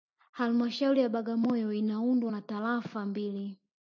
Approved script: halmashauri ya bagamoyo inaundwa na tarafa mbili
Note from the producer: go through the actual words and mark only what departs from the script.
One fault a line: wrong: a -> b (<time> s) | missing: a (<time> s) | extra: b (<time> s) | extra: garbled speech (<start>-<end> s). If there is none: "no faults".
no faults